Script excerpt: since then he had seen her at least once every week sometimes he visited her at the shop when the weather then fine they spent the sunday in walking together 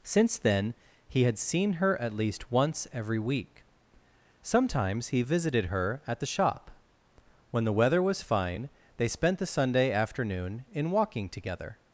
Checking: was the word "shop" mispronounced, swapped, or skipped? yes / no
no